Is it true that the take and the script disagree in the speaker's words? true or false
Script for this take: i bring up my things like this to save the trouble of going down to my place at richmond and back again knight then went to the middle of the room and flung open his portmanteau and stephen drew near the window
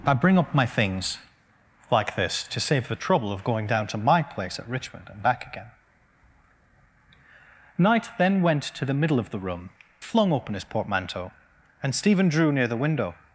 true